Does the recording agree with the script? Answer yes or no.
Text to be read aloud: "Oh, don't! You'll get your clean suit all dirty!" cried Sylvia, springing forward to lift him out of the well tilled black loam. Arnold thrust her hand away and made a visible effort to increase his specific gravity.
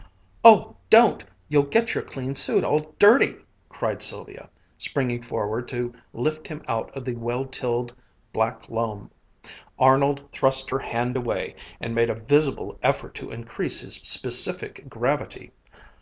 yes